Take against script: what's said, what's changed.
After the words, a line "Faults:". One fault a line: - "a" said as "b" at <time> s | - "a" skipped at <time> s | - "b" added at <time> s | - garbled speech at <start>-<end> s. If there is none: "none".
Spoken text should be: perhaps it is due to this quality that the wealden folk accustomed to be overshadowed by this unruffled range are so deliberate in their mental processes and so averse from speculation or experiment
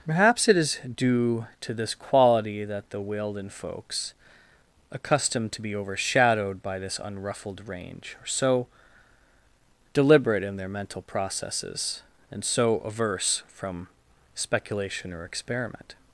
perhaps it is due to this quality that the wealden folks accustomed to be overshadowed by this unruffled range are so deliberate in their mental processes and so averse from speculation or experiment
Faults:
- "folk" said as "folks" at 3.5 s